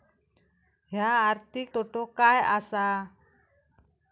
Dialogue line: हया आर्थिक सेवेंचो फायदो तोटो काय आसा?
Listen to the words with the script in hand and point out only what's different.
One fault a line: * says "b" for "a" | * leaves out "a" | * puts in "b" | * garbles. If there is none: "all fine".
* leaves out "सेवेंचो फायदो"